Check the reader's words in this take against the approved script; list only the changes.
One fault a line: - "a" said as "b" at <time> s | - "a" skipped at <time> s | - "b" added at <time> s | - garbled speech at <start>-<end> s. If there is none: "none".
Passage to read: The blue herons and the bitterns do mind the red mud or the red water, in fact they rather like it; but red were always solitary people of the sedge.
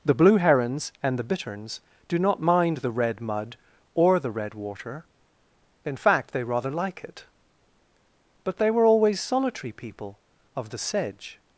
- "not" added at 2.2 s
- "red" said as "they" at 8.6 s